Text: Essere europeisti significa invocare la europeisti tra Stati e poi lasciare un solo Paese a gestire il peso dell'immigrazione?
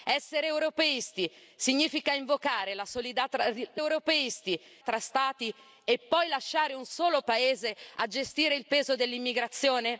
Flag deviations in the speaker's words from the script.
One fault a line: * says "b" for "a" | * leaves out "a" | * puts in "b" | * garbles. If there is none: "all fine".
all fine